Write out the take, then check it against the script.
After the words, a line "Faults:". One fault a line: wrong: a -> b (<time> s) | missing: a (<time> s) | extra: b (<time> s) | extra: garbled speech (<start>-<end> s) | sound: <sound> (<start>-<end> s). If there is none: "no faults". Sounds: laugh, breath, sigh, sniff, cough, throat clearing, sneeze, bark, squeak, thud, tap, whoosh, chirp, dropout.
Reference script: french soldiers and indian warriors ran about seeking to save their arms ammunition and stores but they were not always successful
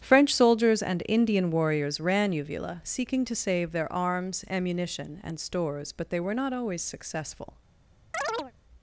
french soldiers and indian warriors ran uvula seeking to save their arms ammunition and stores but they were not always successful
Faults:
wrong: about -> uvula (2.3 s)
sound: chirp (8.1-8.5 s)